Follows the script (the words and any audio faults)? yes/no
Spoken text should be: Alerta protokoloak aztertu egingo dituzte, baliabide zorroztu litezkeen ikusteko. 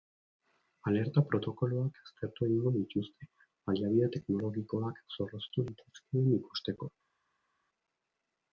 no